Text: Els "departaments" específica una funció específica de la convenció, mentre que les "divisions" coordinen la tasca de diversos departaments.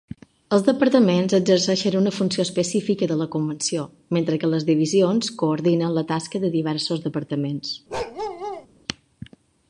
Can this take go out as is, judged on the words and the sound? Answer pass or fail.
fail